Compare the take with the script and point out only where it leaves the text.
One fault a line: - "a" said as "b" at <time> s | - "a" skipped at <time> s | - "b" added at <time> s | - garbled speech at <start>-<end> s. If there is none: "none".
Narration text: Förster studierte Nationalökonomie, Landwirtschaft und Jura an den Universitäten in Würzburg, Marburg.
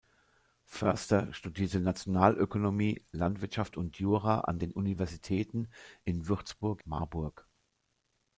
none